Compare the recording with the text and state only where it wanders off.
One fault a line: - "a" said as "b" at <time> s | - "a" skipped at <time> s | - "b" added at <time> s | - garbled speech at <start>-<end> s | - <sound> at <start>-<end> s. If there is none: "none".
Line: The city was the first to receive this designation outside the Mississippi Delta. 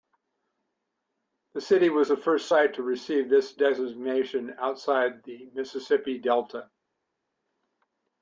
- "site" added at 2.5 s